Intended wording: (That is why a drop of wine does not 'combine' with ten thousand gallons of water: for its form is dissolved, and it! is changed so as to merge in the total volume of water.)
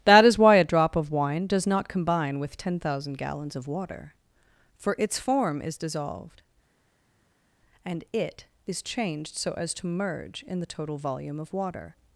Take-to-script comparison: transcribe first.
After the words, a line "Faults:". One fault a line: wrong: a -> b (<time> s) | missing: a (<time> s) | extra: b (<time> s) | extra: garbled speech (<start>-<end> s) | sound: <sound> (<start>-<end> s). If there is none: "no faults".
(That is why a drop of wine does not 'combine' with ten thousand gallons of water: for its form is dissolved, and it! is changed so as to merge in the total volume of water.)
Faults:
no faults